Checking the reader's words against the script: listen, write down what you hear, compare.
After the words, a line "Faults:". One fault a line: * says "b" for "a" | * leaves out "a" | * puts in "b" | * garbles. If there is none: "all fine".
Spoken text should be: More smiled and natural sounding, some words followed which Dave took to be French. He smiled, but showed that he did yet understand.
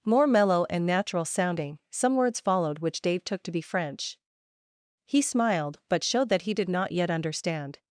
More mellow and natural sounding, some words followed which Dave took to be French. He smiled, but showed that he did not yet understand.
Faults:
* says "mellow" for "smiled"
* puts in "not"